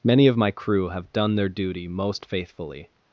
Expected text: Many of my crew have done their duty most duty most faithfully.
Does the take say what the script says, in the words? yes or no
no